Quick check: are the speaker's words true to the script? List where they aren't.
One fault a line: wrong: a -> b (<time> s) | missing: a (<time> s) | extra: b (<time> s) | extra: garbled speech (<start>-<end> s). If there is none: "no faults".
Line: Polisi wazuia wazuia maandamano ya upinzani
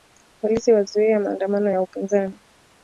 missing: wazuia (1.2 s)